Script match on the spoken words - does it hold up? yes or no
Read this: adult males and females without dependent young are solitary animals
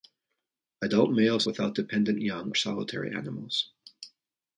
no